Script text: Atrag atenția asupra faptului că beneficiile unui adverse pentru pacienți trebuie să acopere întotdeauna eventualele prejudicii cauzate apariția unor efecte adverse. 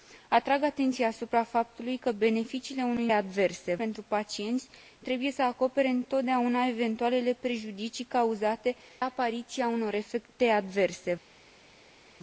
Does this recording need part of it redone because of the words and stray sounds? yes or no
no